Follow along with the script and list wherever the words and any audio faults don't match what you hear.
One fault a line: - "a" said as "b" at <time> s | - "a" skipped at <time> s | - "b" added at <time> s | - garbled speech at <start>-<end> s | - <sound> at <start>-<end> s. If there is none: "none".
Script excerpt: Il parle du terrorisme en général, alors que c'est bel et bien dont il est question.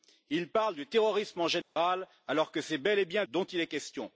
- dropout at 1.6-1.8 s